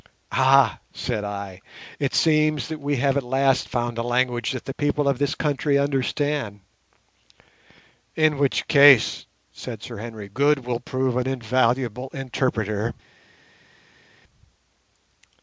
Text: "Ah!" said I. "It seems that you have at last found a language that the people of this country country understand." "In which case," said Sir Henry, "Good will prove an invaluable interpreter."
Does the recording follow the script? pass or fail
fail